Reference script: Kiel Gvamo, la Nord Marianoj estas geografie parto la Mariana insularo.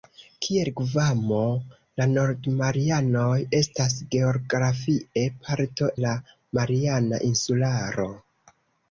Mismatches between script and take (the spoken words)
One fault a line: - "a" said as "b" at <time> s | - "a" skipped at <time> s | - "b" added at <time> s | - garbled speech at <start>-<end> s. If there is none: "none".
none